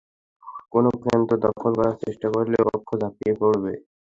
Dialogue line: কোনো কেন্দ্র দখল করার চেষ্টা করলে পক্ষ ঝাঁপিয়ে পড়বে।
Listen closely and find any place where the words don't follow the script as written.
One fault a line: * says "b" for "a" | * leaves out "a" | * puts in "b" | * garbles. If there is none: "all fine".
all fine